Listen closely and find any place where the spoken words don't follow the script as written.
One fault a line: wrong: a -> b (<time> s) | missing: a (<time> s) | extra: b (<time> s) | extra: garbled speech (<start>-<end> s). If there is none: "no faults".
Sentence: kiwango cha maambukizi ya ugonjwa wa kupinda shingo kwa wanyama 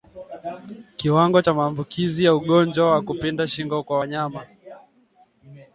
no faults